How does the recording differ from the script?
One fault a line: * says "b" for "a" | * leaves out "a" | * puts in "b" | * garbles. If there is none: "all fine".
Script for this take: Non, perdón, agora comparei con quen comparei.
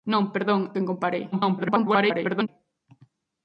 * leaves out "agora comparei con"
* garbles